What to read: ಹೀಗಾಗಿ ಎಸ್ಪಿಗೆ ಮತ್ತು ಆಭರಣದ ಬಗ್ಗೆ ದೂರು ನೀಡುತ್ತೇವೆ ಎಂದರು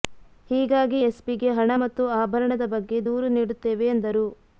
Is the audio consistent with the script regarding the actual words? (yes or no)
no